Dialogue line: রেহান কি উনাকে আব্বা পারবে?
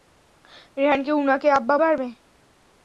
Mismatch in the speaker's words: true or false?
false